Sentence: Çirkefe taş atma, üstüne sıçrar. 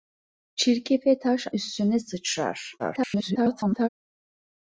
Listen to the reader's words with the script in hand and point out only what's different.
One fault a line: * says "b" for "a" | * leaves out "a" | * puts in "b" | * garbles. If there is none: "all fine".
* leaves out "atma"
* garbles